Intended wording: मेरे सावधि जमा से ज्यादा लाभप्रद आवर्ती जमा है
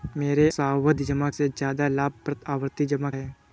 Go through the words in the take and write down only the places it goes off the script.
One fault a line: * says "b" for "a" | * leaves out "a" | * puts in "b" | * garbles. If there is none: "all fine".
all fine